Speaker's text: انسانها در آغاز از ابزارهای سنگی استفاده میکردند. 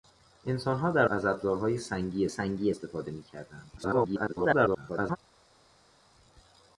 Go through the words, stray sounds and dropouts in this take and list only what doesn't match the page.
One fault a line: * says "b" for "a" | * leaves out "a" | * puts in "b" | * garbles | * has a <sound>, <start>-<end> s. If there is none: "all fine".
* leaves out "آغاز"
* puts in "سنگی"
* garbles